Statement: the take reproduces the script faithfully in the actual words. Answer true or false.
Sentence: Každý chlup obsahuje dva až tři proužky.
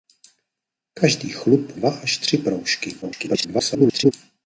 false